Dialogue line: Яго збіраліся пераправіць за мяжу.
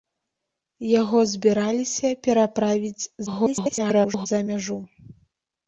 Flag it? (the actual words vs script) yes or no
yes